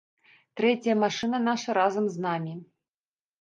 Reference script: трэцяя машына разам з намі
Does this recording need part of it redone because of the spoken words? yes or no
yes